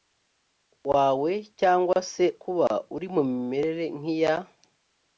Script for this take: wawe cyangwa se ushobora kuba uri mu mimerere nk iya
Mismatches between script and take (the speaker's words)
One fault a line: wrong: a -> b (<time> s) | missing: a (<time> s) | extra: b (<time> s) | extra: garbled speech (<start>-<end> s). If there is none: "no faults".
missing: ushobora (2.2 s)